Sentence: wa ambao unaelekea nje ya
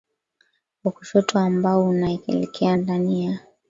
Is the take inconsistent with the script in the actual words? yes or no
yes